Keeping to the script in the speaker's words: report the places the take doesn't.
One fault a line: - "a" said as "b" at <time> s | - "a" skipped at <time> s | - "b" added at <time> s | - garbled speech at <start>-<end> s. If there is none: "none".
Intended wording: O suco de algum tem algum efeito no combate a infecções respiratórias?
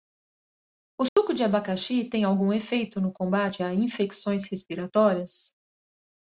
- "algum" said as "abacaxi" at 1.4 s